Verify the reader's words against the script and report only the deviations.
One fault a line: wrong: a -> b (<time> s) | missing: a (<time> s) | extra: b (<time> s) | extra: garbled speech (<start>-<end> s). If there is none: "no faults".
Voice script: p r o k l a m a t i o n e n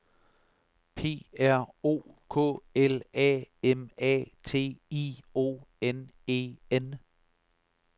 no faults